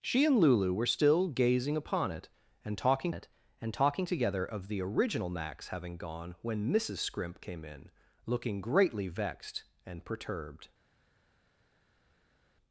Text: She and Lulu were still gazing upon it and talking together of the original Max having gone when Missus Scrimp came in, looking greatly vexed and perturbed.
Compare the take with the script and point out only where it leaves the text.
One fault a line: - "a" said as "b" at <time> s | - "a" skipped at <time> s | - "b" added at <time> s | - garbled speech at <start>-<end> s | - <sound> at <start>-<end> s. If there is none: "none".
- "it and talking" added at 3.1 s